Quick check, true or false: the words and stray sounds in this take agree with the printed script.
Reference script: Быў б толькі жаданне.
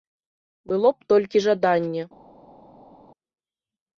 false